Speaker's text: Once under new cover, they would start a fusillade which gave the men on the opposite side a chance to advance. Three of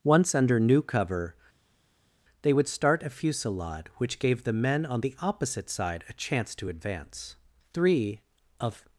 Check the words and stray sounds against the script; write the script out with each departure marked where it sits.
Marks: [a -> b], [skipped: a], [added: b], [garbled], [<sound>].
Once under new cover, they would start a fusillade which gave the men on the opposite side a chance to advance. Three of